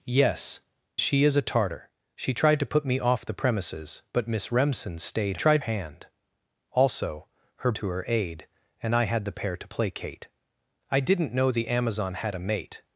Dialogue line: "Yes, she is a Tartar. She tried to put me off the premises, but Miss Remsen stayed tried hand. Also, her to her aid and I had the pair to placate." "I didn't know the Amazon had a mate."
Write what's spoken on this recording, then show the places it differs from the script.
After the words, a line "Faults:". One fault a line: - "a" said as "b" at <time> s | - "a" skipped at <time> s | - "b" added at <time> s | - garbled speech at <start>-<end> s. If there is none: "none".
"Yes, she is a Tartar. She tried to put me off the premises, but Miss Remsen stayed tried hand. Also, her to her aid and I had the pair to placate." "I didn't know the Amazon had a mate."
Faults:
none